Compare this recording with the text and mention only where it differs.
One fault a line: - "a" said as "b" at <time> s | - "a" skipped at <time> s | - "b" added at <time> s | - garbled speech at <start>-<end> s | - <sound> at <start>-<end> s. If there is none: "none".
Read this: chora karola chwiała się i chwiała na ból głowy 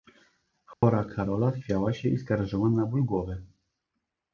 - dropout at 0.7-0.8 s
- "chwiała" said as "skarżyła" at 2.2 s